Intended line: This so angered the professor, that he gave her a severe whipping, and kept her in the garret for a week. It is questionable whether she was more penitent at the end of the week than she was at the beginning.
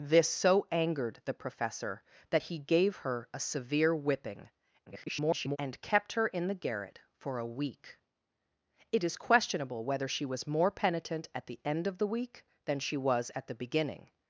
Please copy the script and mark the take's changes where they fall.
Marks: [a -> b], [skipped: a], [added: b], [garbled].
This so angered the professor, that he gave her a severe whipping, [garbled] and kept her in the garret for a week. It is questionable whether she was more penitent at the end of the week than she was at the beginning.